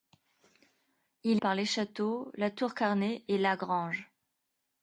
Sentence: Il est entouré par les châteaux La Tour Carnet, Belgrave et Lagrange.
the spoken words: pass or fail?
fail